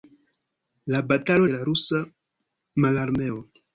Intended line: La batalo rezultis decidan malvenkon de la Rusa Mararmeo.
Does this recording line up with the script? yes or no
no